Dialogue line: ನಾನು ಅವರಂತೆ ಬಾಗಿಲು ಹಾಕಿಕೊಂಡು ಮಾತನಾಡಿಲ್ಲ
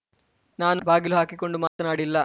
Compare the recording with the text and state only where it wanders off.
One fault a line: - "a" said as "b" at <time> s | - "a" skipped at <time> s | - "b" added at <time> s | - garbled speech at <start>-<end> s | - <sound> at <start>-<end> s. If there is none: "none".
- "ಅವರಂತೆ" skipped at 0.8 s
- dropout at 1.7-1.8 s